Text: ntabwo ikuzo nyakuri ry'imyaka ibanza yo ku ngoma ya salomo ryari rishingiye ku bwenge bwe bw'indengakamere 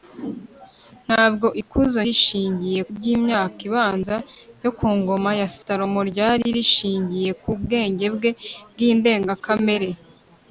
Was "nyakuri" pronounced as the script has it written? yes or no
no